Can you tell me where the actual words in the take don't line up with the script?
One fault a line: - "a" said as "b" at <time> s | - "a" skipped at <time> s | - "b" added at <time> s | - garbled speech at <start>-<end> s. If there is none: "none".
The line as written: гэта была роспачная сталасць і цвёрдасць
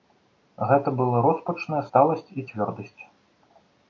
none